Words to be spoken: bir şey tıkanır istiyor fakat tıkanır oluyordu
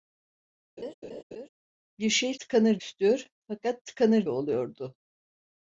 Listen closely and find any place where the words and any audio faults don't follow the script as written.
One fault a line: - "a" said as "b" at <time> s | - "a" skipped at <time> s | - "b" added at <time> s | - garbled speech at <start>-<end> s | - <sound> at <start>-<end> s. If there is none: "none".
- laugh at 0.8-1.5 s